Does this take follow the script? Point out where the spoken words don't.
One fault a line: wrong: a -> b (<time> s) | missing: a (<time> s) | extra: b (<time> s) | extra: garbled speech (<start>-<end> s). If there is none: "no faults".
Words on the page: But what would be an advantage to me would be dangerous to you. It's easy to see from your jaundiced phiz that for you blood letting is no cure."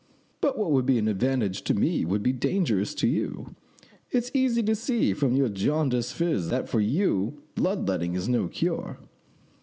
no faults